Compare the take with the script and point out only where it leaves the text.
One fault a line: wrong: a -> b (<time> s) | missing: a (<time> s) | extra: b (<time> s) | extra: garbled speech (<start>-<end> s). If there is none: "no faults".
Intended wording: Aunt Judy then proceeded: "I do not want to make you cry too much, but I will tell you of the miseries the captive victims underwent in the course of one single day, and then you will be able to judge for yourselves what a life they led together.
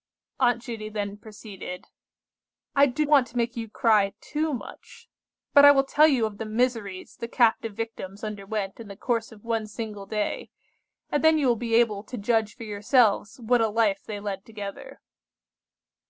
missing: not (3.0 s)